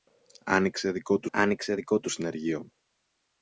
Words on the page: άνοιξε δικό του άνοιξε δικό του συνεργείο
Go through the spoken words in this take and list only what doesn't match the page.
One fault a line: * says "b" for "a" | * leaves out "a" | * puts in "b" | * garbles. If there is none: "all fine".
all fine